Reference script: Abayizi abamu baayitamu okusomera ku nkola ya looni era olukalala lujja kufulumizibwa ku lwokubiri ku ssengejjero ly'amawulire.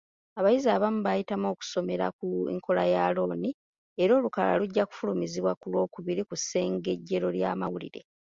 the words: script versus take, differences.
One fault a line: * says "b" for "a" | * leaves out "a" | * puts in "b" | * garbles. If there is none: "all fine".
all fine